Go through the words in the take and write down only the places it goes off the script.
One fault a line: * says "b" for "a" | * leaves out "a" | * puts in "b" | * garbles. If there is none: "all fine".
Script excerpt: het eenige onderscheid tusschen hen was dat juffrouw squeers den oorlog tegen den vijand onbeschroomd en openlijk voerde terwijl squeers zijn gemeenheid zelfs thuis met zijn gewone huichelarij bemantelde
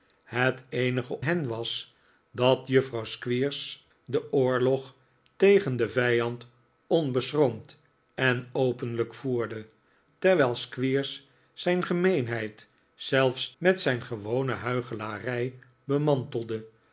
* leaves out "onderscheid tusschen"
* leaves out "thuis"